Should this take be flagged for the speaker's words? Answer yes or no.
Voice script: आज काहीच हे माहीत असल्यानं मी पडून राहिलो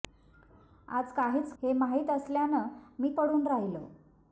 no